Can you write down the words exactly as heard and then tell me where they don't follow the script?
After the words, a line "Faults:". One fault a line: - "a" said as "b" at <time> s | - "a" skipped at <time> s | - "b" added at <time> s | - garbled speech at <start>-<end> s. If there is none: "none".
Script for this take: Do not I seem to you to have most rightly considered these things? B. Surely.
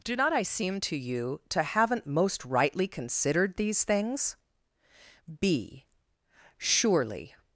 Do not I seem to you to haven't most rightly considered these things? B. Surely.
Faults:
- "have" said as "haven't" at 1.6 s